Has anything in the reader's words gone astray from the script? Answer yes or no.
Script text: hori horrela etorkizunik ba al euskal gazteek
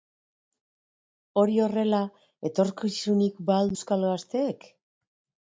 no